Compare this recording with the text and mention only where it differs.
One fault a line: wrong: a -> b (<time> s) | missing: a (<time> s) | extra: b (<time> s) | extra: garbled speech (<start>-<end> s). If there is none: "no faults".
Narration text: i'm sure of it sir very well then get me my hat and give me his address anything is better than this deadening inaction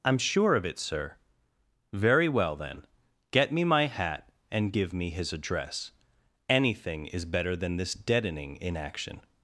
no faults